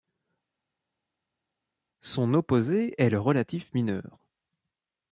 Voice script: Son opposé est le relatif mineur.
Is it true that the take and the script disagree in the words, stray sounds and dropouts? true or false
false